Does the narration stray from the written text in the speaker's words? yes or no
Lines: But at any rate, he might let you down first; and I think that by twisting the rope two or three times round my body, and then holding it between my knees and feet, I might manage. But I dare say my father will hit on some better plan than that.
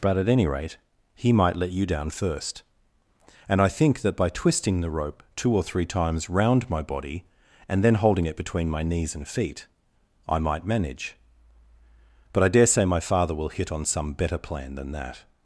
no